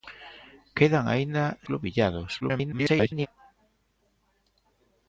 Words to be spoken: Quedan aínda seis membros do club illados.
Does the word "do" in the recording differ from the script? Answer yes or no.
yes